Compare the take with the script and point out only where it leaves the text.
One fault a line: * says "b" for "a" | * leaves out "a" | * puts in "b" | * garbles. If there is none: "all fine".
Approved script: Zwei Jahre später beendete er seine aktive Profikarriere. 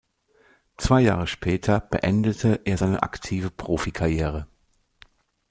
all fine